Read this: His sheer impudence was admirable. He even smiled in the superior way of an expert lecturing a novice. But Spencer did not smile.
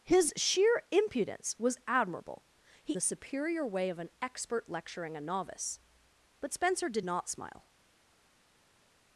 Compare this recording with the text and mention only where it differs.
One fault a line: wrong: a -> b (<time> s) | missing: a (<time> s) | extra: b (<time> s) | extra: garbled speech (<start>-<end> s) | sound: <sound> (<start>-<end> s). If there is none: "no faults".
missing: even smiled in (2.9 s)